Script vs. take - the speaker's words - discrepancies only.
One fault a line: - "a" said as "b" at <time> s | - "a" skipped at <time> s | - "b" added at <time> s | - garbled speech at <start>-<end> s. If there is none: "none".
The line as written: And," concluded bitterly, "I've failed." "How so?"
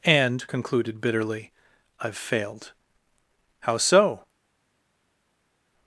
none